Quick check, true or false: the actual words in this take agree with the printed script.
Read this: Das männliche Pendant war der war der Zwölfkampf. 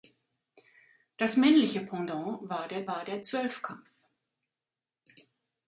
true